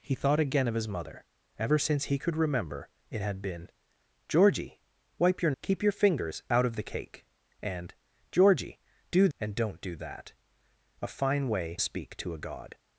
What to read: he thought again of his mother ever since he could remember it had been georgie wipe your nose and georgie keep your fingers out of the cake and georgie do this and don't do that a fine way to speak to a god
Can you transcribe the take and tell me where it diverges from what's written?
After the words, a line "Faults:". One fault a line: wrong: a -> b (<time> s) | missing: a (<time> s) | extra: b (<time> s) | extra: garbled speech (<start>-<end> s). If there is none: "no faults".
he thought again of his mother ever since he could remember it had been georgie wipe your keep your fingers out of the cake and georgie do and don't do that a fine way speak to a god
Faults:
missing: nose and georgie (5.5 s)
missing: this (9.3 s)
missing: to (11.8 s)